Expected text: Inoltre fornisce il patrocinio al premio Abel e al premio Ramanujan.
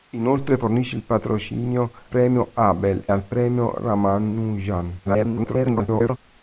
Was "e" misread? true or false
true